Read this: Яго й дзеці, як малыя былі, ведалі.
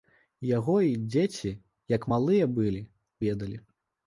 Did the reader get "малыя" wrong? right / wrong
right